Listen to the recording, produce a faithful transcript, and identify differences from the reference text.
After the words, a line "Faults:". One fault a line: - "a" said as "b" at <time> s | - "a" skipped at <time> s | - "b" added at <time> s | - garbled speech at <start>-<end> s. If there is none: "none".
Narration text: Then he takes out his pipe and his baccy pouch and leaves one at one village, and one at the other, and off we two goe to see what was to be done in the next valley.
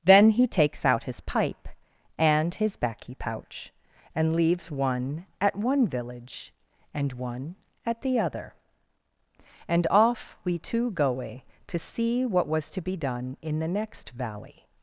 Then he takes out his pipe and his baccy pouch and leaves one at one village, and one at the other, and off we two goe to see what was to be done in the next valley.
Faults:
none